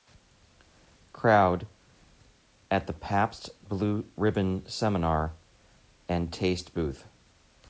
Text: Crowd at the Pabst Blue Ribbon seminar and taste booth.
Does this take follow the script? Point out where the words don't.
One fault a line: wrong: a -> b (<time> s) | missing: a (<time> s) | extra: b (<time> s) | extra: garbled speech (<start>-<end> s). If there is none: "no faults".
no faults